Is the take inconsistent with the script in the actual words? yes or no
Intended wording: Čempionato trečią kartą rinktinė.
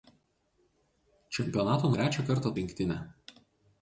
no